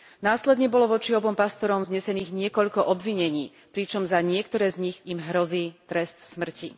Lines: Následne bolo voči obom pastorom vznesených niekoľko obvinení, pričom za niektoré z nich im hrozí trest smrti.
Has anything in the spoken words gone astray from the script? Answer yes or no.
no